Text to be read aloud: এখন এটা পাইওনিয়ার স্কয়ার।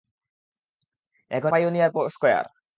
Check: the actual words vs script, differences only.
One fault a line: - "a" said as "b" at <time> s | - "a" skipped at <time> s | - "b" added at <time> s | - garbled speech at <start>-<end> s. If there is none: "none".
- "এটা" skipped at 1.5 s